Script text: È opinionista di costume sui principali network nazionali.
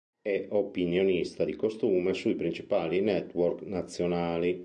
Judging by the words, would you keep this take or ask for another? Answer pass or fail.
pass